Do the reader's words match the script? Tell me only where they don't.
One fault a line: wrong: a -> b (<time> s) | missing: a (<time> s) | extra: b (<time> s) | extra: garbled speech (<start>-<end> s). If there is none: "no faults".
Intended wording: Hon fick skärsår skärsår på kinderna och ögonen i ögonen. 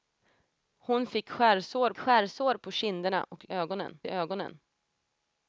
no faults